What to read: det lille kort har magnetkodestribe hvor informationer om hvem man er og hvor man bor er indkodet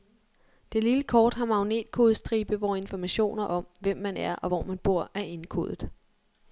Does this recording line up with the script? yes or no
yes